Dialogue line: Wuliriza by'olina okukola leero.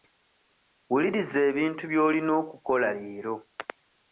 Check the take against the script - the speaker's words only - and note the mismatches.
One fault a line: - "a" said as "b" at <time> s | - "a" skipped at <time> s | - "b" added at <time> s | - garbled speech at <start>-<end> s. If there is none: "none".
- "ebintu" added at 1.5 s